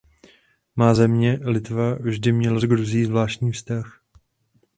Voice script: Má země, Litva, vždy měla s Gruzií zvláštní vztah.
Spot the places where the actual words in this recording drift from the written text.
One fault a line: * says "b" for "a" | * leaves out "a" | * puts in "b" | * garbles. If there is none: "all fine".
all fine